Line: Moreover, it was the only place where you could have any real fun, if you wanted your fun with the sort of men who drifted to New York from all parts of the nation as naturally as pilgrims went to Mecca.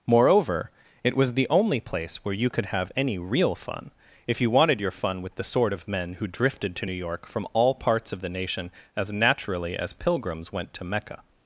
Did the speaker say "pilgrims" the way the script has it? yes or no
yes